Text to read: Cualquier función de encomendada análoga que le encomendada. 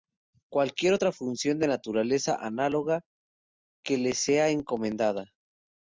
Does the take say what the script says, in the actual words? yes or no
no